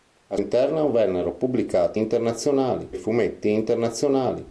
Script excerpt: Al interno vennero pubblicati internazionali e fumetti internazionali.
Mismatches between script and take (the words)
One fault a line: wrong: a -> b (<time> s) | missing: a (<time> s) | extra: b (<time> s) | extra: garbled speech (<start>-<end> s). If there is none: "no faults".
no faults